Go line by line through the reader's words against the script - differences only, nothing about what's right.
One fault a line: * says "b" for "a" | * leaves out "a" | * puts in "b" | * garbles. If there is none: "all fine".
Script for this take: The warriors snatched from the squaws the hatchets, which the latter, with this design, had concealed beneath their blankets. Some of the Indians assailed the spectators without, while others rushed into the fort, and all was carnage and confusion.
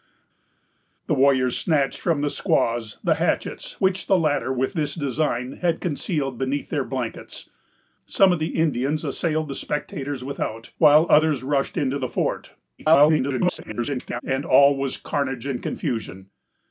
* garbles